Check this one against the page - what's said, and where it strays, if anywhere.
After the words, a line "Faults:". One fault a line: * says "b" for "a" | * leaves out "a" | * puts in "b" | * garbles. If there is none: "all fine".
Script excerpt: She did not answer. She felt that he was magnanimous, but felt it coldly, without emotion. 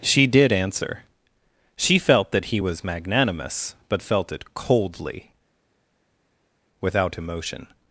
She did answer. She felt that he was magnanimous, but felt it coldly, without emotion.
Faults:
* leaves out "not"